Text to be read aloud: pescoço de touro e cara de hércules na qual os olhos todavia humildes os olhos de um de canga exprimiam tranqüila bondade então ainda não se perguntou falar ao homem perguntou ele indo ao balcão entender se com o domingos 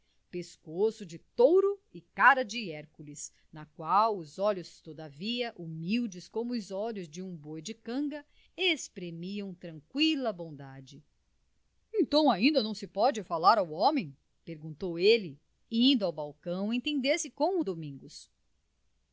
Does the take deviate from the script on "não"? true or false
false